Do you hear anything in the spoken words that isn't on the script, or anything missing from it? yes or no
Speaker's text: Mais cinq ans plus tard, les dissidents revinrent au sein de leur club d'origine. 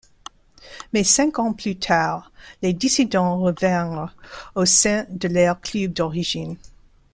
no